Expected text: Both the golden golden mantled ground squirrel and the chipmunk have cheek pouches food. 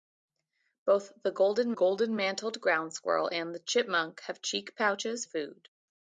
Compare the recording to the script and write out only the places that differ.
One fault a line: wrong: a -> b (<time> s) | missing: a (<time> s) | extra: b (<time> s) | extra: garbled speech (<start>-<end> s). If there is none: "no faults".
no faults